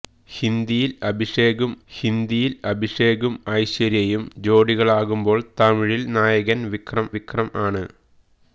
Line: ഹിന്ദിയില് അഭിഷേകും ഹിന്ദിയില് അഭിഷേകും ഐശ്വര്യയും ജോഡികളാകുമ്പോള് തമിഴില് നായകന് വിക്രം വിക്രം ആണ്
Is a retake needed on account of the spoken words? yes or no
no